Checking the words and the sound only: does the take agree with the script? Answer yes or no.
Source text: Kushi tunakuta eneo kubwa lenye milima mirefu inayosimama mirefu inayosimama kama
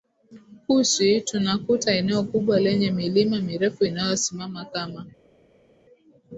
no